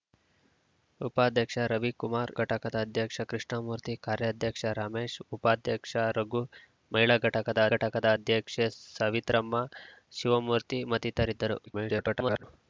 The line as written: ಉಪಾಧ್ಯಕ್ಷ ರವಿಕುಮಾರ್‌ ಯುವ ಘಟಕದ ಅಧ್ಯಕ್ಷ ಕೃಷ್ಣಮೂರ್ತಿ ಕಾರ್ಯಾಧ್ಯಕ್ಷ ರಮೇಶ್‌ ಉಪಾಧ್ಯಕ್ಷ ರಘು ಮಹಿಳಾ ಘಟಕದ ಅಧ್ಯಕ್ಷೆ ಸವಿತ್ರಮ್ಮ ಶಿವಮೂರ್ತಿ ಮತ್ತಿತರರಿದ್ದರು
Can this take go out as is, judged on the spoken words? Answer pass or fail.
fail